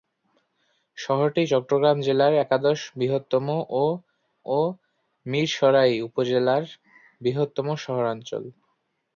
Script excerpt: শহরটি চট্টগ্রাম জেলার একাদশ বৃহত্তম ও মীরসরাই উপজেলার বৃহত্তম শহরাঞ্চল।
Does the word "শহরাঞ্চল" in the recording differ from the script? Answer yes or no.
no